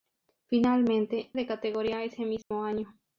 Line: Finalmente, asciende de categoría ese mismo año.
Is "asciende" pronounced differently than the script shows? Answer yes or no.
yes